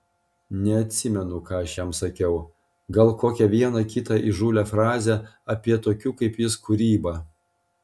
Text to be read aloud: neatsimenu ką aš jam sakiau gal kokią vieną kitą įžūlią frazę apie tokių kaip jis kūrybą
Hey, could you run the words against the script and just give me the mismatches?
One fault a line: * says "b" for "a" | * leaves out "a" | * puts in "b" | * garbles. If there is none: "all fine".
all fine